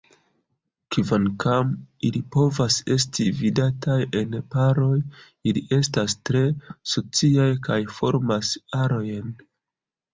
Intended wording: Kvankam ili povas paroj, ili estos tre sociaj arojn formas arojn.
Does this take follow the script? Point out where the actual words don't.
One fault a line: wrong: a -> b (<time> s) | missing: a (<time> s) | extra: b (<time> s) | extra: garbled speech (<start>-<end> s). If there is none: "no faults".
extra: esti vidataj en (3.0 s)
wrong: estos -> estas (5.8 s)
wrong: arojn -> kaj (7.7 s)